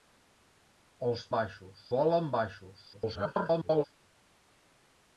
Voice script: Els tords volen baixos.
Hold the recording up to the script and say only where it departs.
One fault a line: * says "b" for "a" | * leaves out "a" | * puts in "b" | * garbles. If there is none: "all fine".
* says "baixos" for "tords"
* garbles